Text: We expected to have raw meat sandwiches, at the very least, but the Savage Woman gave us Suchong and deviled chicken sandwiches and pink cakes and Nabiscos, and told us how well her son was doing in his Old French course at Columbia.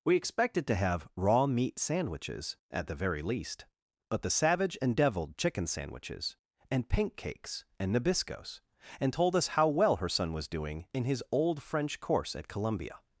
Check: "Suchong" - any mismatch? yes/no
yes